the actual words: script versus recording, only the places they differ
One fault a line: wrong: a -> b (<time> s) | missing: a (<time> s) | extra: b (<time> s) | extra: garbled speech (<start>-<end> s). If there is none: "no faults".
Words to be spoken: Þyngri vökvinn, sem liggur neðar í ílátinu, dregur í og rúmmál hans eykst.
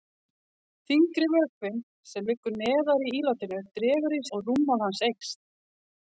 no faults